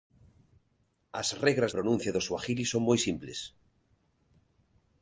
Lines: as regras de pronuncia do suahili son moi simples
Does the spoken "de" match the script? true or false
false